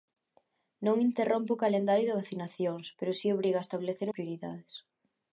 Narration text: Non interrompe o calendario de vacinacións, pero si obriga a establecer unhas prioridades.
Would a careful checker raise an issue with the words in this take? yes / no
yes